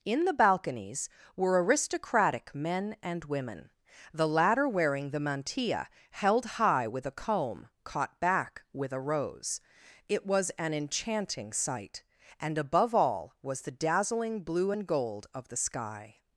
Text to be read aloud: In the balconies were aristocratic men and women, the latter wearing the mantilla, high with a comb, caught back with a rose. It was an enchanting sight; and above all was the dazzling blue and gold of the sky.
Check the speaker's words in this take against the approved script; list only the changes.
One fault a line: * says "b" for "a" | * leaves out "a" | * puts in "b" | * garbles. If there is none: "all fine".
* puts in "held"